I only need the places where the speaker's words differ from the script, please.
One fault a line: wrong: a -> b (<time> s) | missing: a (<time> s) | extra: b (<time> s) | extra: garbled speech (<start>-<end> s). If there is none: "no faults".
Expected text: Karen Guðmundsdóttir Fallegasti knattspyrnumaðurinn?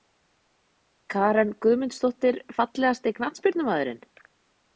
no faults